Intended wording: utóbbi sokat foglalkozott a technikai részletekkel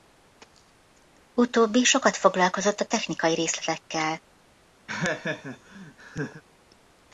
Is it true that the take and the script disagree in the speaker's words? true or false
false